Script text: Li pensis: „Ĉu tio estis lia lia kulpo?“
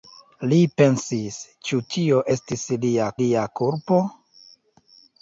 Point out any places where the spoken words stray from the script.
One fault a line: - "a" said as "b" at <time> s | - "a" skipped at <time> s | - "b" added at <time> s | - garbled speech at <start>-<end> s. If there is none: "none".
none